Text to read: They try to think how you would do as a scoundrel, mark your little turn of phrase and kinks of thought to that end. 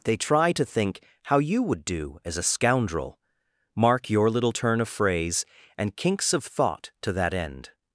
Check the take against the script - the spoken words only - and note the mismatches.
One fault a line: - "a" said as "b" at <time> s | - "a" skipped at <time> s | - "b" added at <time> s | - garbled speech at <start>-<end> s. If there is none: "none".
none